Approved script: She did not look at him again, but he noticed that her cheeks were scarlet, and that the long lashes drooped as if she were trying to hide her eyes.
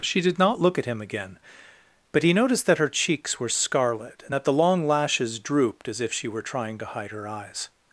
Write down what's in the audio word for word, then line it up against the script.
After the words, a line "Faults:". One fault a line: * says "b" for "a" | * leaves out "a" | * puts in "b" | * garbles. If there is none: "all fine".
She did not look at him again, but he noticed that her cheeks were scarlet, and that the long lashes drooped as if she were trying to hide her eyes.
Faults:
all fine